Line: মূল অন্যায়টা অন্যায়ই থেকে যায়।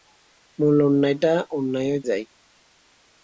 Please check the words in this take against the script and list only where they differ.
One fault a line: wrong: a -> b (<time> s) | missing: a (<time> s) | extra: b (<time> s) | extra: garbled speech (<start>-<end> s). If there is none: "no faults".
missing: থেকে (2.0 s)